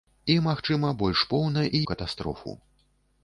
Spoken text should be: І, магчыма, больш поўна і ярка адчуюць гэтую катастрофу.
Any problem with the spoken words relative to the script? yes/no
yes